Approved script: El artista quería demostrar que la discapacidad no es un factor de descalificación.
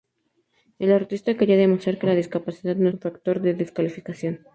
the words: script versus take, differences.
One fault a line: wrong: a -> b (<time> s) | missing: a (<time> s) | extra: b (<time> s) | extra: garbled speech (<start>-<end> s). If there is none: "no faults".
missing: es (2.9 s)